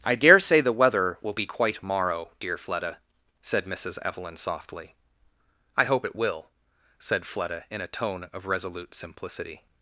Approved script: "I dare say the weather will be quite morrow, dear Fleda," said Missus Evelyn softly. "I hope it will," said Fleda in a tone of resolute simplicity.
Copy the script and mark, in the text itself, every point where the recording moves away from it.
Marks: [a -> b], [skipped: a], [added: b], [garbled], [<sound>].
"I dare say the weather will be quite morrow, dear Fleda," said Missus Evelyn softly. "I hope it will," said Fleda in a tone of resolute simplicity.